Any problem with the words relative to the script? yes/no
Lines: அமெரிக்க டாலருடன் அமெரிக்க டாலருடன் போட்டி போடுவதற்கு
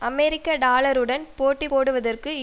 yes